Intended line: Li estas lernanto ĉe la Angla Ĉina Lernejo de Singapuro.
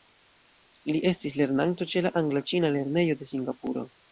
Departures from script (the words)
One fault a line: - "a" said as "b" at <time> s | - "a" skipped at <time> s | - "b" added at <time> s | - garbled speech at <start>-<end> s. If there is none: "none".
- "estas" said as "estis" at 1.1 s